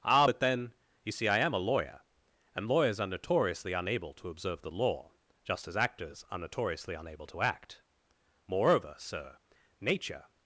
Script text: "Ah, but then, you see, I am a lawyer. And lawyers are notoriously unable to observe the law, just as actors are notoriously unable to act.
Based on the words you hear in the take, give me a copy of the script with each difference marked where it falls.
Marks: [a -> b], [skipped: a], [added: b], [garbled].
"Ah, but then, you see, I am a lawyer. And lawyers are notoriously unable to observe the law, just as actors are notoriously unable to act. [added: Moreover sir Nature]